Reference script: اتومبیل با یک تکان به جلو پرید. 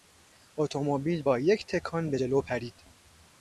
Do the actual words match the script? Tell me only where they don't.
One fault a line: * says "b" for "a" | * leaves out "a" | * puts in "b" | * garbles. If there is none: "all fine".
all fine